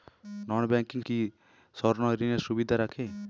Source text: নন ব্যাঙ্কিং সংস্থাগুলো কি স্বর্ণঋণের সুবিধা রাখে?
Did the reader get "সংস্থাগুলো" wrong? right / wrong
wrong